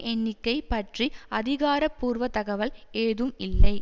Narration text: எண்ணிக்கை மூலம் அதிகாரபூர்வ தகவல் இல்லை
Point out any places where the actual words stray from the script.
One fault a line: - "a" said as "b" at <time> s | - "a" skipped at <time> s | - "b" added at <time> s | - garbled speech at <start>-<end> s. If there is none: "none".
- "மூலம்" said as "பற்றி" at 0.7 s
- "ஏதும்" added at 3.0 s